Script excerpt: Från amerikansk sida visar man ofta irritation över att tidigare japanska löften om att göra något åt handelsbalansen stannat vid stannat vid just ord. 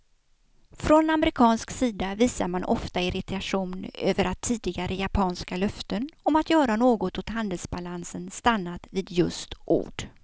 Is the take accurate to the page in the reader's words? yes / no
no